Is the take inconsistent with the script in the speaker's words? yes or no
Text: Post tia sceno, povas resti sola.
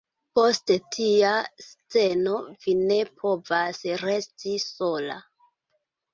yes